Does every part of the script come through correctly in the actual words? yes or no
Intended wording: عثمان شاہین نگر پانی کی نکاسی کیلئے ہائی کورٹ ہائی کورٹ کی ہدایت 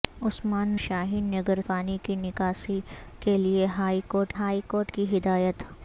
yes